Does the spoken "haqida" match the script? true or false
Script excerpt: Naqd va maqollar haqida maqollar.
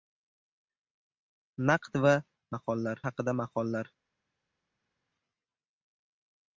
true